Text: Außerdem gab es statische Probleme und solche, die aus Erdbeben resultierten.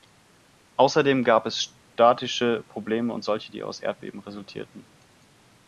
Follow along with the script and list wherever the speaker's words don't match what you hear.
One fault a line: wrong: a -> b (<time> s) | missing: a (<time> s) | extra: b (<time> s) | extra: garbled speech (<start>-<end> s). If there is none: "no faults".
no faults